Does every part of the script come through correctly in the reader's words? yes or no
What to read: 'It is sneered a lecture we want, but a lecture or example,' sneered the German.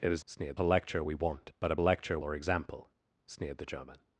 yes